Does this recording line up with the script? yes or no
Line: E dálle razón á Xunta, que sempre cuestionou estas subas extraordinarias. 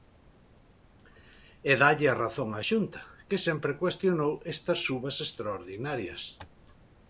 no